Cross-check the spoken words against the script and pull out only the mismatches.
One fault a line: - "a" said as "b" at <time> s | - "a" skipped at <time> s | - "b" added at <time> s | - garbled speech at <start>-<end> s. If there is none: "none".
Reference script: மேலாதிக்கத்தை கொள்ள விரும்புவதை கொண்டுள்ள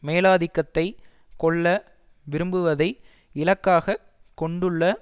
- "இலக்காக" added at 3.4 s